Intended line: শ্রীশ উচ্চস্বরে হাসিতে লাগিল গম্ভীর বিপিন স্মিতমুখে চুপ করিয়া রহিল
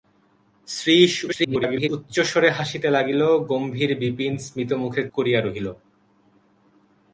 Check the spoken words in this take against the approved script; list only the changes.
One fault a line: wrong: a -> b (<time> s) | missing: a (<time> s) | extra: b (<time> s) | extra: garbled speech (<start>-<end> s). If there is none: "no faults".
extra: garbled speech (1.3-1.9 s)
missing: চুপ (5.0 s)